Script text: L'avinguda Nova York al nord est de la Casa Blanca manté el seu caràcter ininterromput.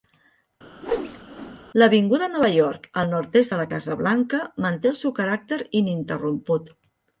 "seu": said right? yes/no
yes